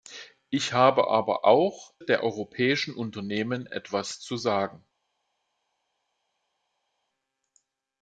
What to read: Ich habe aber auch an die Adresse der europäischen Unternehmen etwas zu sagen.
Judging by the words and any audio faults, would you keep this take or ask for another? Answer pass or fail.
fail